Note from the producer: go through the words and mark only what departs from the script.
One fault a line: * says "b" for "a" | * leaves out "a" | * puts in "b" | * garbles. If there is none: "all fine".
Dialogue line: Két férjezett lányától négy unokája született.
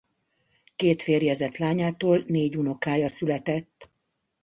all fine